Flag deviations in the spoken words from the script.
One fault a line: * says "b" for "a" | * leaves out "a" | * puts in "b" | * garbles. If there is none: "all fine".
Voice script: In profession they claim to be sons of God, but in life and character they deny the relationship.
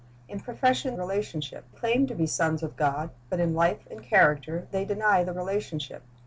* says "relationship" for "they"